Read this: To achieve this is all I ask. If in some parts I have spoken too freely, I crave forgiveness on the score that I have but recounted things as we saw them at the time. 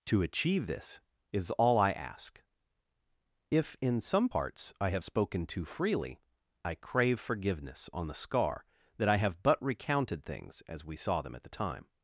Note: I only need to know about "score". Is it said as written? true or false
false